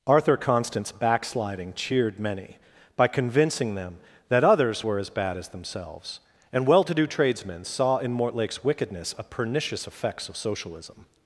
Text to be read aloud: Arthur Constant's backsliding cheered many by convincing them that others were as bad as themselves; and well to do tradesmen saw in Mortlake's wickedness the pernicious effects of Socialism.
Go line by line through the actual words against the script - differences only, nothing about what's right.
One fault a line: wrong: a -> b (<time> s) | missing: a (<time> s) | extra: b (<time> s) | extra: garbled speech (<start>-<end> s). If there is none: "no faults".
wrong: the -> a (9.2 s)